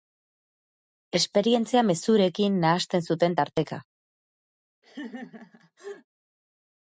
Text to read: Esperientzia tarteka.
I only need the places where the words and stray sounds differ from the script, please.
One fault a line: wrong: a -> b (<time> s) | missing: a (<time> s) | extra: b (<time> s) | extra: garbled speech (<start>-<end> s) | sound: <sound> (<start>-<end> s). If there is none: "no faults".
extra: mezurekin nahasten zuten (1.9 s)
sound: laugh (4.8-6.1 s)